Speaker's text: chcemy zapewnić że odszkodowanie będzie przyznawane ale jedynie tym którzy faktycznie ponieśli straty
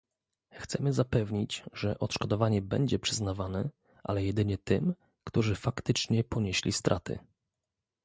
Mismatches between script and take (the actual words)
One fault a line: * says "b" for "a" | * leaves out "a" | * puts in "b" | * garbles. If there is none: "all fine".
all fine